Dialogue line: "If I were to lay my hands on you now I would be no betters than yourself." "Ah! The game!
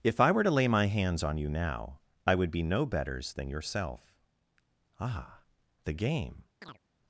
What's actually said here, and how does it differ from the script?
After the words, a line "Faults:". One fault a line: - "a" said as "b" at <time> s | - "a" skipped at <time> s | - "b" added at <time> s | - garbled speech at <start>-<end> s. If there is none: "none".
"If I were to lay my hands on you now I would be no betters than yourself." "Ah! The game!
Faults:
none